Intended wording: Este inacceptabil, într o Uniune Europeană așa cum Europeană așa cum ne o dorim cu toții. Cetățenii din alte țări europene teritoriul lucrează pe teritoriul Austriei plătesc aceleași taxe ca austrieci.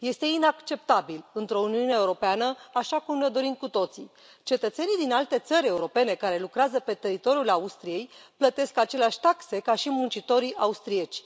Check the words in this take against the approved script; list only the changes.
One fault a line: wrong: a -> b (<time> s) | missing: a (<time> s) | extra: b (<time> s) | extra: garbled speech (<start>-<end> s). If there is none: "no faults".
missing: Europeană așa cum (3.2 s)
wrong: teritoriul -> care (6.1 s)
extra: și muncitorii (9.7 s)